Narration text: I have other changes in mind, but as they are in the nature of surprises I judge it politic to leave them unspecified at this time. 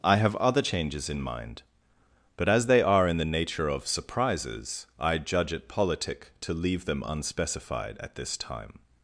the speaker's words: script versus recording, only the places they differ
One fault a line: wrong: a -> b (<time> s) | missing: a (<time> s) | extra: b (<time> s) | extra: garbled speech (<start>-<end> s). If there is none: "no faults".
no faults